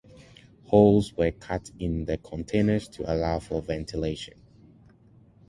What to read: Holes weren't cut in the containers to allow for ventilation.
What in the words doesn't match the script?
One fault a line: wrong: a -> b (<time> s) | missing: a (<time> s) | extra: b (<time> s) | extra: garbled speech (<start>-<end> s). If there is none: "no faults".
wrong: weren't -> were (1.1 s)